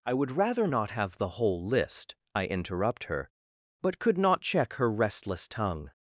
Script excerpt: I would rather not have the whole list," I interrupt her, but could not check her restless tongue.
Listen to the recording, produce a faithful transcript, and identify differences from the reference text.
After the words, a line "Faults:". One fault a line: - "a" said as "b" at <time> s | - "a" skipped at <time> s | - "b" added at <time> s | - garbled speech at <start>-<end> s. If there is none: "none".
I would rather not have the whole list," I interrupt her, but could not check her restless tongue.
Faults:
none